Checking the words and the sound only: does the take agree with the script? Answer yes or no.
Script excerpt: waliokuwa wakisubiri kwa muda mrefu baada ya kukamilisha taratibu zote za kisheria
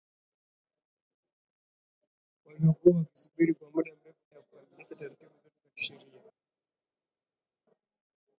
no